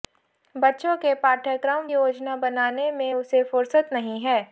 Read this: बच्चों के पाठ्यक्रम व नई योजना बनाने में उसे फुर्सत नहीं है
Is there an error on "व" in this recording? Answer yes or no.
yes